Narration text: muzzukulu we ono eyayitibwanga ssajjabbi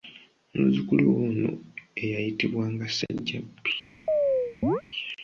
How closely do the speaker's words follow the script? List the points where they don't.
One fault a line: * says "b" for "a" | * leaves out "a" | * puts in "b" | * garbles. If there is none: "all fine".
all fine